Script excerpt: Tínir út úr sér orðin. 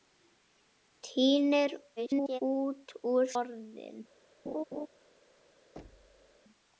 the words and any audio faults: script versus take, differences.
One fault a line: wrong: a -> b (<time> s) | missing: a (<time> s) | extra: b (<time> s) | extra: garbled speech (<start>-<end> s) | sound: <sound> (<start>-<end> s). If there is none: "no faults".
extra: garbled speech (2.0-2.4 s)
missing: sér (3.2 s)
sound: laugh (4.5-4.9 s)
sound: thud (5.8-6.4 s)